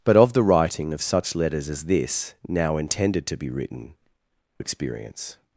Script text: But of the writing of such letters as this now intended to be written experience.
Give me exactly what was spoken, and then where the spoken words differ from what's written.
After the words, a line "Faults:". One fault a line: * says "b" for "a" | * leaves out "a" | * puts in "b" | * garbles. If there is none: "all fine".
But of the writing of such letters as this now intended to be written experience.
Faults:
all fine